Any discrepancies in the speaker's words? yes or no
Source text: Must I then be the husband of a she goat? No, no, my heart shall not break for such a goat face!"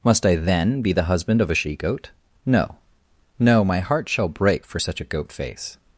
yes